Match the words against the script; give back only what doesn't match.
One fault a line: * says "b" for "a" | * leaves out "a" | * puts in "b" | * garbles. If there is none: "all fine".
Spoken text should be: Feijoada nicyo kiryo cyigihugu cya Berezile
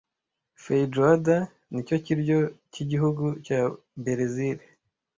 all fine